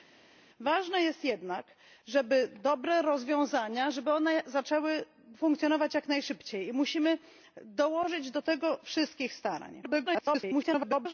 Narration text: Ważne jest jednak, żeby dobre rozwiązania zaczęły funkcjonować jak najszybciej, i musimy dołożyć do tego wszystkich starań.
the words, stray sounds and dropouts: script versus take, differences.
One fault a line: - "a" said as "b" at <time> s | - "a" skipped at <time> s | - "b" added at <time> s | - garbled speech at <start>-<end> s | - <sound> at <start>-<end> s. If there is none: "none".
- garbled speech at 9.8-11.1 s